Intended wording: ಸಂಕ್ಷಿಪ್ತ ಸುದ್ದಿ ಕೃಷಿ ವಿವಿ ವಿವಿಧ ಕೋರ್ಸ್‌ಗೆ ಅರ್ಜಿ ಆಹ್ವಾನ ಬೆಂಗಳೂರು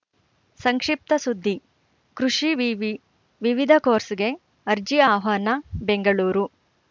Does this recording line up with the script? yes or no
yes